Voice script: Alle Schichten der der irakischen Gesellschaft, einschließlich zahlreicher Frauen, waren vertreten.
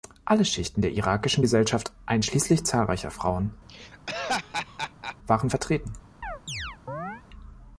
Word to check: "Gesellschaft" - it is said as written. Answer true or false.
true